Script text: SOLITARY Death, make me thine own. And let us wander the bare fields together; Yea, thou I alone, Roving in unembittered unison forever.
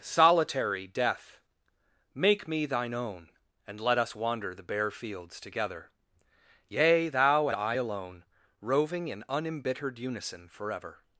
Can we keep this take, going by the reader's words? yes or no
yes